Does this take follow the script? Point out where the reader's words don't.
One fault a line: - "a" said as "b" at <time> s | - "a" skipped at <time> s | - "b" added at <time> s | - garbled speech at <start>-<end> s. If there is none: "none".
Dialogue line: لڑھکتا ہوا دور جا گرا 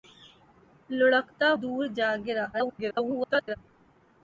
- "ہوا" skipped at 1.5 s
- garbled speech at 2.5-3.6 s